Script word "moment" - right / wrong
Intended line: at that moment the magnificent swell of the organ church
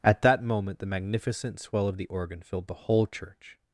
right